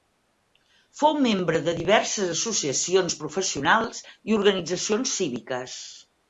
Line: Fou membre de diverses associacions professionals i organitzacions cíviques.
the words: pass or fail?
pass